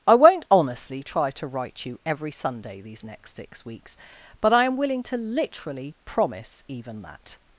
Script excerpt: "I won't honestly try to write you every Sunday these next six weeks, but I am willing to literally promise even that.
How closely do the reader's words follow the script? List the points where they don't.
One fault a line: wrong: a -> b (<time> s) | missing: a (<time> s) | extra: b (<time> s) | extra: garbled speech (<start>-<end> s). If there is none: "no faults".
no faults